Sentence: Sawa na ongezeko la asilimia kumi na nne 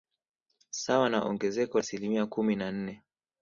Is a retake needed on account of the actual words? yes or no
yes